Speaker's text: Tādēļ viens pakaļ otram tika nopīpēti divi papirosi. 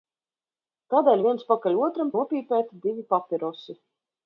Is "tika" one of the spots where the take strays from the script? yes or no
yes